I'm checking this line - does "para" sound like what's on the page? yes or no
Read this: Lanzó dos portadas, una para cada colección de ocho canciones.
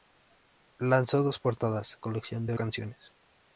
no